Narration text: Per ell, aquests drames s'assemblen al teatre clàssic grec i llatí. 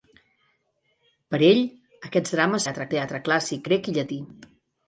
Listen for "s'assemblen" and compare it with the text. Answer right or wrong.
wrong